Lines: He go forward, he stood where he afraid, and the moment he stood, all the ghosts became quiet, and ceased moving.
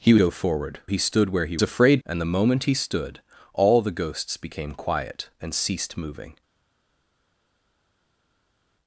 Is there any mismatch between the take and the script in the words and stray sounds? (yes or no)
no